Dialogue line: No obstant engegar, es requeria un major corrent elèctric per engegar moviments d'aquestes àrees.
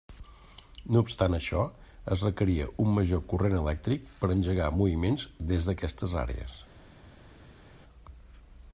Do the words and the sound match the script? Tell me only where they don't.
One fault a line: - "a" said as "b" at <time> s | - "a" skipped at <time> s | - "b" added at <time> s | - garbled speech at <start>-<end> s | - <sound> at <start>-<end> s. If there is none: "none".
- "engegar" said as "això" at 1.4 s
- "des" added at 5.5 s